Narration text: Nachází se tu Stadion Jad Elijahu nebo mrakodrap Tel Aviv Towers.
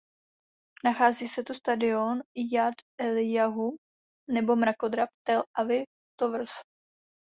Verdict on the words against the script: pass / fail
pass